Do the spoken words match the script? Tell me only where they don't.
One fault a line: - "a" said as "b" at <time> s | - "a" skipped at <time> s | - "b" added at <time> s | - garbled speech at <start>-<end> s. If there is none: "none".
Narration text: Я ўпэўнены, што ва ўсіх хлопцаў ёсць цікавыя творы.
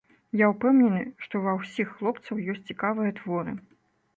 none